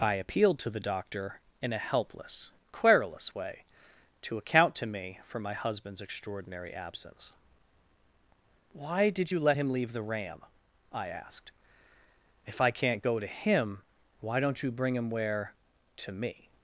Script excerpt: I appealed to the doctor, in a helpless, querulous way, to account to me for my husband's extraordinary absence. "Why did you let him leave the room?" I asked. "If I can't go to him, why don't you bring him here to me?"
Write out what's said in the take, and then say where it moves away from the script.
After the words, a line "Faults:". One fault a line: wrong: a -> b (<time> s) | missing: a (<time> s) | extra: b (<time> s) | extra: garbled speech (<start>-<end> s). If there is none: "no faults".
I appealed to the doctor, in a helpless, querulous way, to account to me for my husband's extraordinary absence. "Why did you let him leave the ram?" I asked. "If I can't go to him, why don't you bring him where to me?"
Faults:
wrong: room -> ram (10.0 s)
wrong: here -> where (15.1 s)